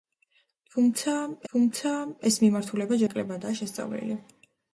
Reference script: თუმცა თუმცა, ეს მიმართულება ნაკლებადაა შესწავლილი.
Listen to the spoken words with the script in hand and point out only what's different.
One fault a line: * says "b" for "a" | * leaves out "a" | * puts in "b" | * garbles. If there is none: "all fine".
all fine